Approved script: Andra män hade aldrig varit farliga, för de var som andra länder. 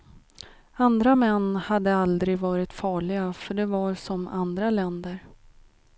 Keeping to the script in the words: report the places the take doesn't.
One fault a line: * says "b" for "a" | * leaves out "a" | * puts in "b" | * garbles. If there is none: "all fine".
all fine